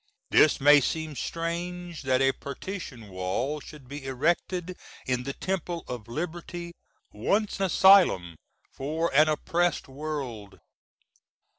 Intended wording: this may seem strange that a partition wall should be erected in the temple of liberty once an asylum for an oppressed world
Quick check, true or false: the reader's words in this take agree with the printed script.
false